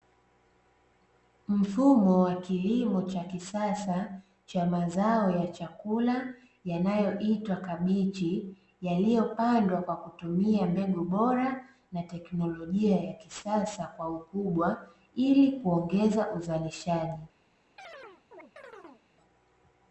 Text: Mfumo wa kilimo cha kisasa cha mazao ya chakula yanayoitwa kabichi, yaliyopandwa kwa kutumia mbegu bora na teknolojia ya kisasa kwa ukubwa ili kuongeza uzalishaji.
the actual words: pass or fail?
pass